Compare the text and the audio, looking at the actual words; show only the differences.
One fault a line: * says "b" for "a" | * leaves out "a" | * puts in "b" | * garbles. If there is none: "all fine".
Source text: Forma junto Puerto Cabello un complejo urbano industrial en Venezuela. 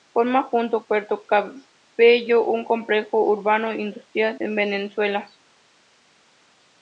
all fine